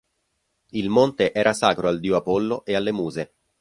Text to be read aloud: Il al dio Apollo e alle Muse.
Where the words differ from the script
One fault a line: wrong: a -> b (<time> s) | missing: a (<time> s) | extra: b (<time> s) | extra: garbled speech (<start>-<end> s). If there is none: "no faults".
extra: monte era sacro (0.9 s)